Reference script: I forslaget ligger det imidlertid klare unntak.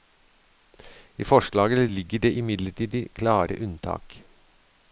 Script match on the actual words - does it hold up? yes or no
yes